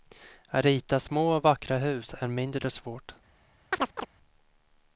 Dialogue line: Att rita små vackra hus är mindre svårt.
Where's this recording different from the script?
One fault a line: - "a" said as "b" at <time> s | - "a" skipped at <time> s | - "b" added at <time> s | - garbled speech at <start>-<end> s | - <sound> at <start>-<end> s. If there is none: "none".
- chirp at 3.7-4.1 s